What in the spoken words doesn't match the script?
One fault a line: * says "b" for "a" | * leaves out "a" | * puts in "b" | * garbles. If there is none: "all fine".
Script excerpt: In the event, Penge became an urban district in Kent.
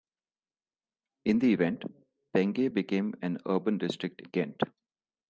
* leaves out "in"